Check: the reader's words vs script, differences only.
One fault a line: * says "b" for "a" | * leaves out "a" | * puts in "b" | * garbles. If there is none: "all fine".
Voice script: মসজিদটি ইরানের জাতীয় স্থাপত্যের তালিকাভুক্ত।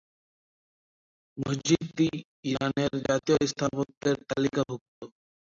all fine